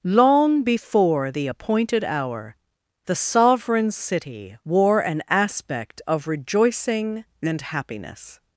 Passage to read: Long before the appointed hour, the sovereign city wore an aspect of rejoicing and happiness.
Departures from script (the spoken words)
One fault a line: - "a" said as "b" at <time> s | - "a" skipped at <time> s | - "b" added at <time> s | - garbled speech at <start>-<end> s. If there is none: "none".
none